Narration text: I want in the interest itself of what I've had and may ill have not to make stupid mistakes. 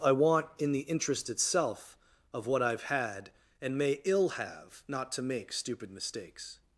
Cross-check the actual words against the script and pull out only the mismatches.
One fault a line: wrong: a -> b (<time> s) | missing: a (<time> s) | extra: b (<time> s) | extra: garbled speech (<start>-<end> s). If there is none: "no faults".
no faults